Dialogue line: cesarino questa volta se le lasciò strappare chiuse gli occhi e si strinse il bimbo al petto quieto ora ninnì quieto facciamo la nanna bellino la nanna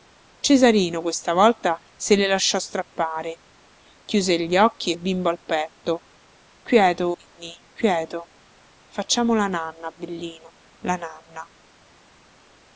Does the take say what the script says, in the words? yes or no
no